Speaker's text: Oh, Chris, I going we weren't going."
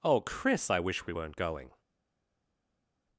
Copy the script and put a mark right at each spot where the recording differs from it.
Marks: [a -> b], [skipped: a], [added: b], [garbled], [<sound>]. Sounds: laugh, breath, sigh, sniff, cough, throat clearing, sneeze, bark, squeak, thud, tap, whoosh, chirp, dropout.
Oh, Chris, I [going -> wish] we weren't going."